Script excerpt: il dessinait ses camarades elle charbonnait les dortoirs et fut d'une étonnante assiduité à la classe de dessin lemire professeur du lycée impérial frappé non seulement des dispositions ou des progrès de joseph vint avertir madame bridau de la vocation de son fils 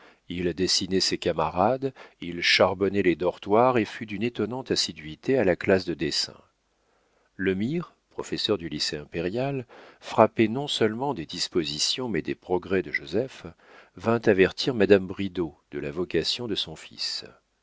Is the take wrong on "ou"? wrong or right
wrong